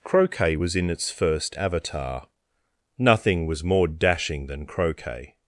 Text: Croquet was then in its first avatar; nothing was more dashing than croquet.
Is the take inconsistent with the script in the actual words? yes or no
yes